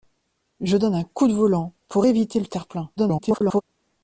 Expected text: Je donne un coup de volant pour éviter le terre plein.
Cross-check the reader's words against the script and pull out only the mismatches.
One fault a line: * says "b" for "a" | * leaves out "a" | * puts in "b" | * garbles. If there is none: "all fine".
* garbles